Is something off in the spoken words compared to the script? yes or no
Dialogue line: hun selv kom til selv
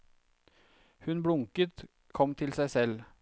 yes